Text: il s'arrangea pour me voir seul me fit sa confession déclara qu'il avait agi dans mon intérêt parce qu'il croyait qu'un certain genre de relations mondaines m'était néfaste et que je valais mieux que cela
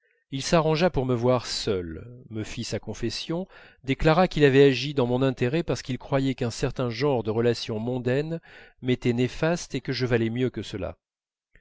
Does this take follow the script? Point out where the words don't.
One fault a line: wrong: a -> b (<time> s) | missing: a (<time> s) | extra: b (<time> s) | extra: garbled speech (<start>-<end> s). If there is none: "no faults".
no faults